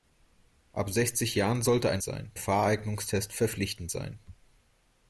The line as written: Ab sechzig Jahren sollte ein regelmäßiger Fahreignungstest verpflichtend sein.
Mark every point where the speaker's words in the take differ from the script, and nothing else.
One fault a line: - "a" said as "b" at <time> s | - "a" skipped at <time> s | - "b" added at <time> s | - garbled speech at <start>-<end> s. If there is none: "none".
- "regelmäßiger" said as "sein" at 2.0 s